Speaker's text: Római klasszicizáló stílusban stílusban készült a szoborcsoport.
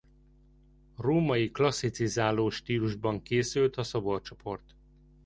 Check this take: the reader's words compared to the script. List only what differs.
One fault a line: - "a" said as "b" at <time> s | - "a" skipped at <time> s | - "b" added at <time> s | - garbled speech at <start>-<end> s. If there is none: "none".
- "stílusban" skipped at 3.2 s